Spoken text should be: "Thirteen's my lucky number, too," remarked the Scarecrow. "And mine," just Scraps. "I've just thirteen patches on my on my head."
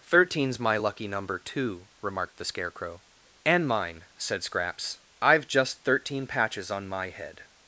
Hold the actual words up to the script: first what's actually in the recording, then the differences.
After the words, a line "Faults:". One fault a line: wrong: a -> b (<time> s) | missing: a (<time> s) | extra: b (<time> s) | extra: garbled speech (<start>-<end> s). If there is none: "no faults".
"Thirteen's my lucky number, too," remarked the Scarecrow. "And mine," said Scraps. "I've just thirteen patches on my head."
Faults:
wrong: just -> said (4.2 s)
missing: on my (7.1 s)